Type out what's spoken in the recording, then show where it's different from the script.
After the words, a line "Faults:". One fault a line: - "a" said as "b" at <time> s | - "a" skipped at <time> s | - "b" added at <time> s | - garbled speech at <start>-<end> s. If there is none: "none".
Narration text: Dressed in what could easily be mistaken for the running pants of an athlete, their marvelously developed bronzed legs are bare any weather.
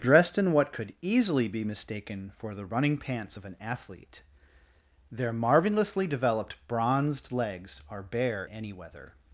Dressed in what could easily be mistaken for the running pants of an athlete, their marvelously developed bronzed legs are bare any weather.
Faults:
none